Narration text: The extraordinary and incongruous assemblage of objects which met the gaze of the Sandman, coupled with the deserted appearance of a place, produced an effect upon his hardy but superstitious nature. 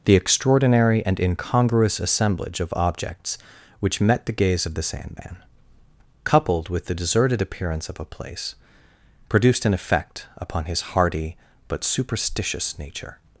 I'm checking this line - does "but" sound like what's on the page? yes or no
yes